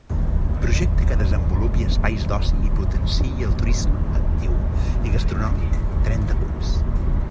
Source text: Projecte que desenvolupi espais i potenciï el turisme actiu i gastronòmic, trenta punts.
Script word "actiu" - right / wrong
right